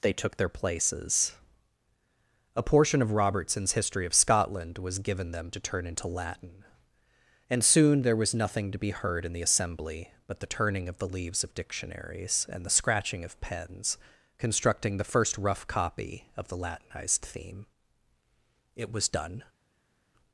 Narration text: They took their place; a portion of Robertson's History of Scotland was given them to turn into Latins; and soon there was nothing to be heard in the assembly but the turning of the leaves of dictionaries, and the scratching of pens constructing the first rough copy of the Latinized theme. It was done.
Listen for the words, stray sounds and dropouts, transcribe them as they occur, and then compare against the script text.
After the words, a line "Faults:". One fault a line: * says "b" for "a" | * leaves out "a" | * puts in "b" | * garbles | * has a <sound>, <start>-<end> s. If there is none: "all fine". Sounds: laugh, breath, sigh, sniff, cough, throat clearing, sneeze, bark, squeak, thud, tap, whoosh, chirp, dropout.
They took their places; a portion of Robertson's History of Scotland was given them to turn into Latin; and soon there was nothing to be heard in the assembly but the turning of the leaves of dictionaries, and the scratching of pens constructing the first rough copy of the Latinized theme. It was done.
Faults:
* says "places" for "place"
* says "Latin" for "Latins"